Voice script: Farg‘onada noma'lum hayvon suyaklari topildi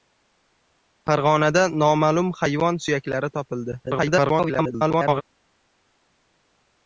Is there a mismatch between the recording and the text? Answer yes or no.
yes